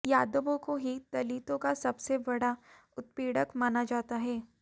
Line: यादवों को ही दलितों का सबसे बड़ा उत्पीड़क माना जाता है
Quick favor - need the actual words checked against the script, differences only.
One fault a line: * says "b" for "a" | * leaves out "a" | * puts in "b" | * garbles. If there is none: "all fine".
all fine